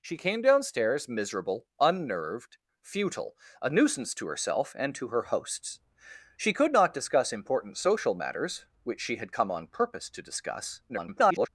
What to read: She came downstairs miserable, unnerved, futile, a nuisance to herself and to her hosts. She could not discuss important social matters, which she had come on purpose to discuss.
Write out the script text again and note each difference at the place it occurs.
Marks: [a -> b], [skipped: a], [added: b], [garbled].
She came downstairs miserable, unnerved, futile, a nuisance to herself and to her hosts. She could not discuss important social matters, which she had come on purpose to discuss. [garbled]